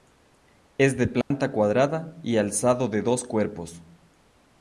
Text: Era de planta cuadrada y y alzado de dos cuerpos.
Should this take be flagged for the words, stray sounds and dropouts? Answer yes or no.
yes